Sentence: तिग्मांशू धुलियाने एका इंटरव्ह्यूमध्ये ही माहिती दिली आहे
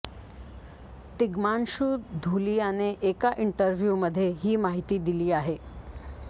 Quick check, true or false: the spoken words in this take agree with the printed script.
true